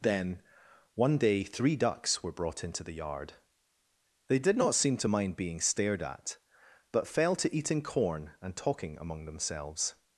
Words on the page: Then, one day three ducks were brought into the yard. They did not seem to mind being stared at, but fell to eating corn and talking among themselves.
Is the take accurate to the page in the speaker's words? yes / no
yes